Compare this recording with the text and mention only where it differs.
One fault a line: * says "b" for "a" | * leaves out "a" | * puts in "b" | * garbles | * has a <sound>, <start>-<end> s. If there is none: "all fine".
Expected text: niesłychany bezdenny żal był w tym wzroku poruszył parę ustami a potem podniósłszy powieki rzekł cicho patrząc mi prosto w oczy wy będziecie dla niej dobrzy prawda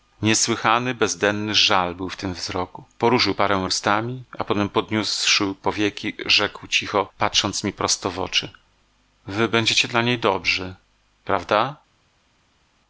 all fine